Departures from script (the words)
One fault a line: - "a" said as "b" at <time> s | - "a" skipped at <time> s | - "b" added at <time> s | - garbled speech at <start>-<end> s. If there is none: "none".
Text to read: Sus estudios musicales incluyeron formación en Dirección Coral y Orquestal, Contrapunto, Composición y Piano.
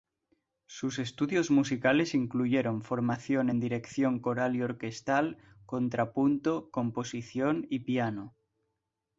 none